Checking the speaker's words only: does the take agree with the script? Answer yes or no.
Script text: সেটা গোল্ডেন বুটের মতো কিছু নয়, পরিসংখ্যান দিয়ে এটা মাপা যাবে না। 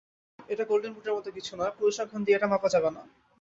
no